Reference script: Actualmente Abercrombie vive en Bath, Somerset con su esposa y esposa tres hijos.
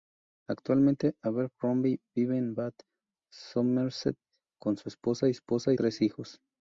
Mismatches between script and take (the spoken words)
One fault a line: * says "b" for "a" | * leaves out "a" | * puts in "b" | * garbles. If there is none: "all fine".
all fine